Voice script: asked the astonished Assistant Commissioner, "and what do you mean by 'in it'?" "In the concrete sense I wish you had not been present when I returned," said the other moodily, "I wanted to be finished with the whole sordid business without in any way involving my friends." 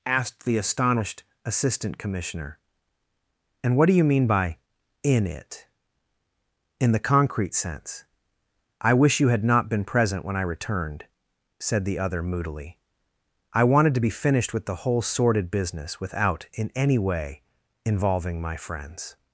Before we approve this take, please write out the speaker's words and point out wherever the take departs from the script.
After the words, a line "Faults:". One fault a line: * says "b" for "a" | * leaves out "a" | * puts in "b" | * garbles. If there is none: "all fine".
asked the astonished Assistant Commissioner, "and what do you mean by 'in it'?" "In the concrete sense I wish you had not been present when I returned," said the other moodily, "I wanted to be finished with the whole sordid business without in any way involving my friends."
Faults:
all fine